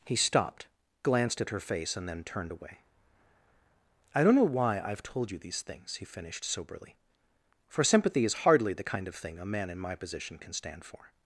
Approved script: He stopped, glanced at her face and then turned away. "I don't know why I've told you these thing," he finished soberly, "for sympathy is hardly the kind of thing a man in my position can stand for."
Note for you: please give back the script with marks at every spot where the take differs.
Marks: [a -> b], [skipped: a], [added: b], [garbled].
He stopped, glanced at her face and then turned away. "I don't know why I've told you these [thing," -> things] he finished soberly, "for sympathy is hardly the kind of thing a man in my position can stand for."